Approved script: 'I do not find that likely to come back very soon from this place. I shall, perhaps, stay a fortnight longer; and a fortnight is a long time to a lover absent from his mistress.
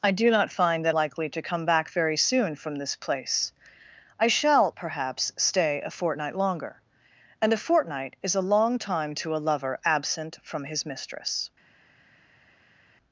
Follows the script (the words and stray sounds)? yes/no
yes